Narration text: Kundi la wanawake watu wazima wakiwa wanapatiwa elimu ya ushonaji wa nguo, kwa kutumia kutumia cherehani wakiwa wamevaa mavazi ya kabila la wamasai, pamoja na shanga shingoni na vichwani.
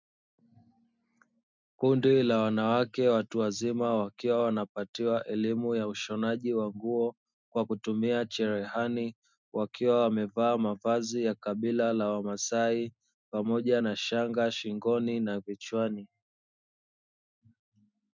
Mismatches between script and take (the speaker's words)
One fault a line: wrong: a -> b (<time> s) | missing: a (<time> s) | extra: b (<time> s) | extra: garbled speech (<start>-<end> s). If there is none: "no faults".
missing: kutumia (8.2 s)